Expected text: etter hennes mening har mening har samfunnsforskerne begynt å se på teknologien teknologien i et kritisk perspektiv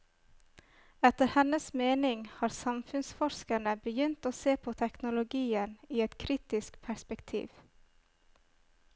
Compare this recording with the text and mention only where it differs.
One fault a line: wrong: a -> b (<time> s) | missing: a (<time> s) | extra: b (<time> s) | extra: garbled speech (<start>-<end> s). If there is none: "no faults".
missing: mening har (2.5 s)
missing: teknologien (5.7 s)